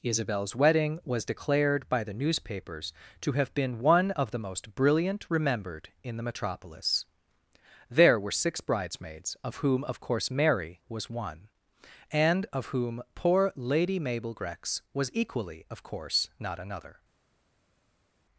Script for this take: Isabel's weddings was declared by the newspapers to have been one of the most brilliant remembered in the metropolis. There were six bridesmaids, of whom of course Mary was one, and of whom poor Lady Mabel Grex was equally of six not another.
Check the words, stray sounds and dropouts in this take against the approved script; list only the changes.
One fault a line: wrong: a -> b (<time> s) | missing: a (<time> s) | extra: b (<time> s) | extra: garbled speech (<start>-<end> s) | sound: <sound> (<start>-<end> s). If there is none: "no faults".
wrong: weddings -> wedding (0.6 s)
wrong: six -> course (15.8 s)